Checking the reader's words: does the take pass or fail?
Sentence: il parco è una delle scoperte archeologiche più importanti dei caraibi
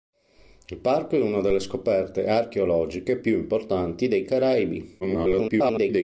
fail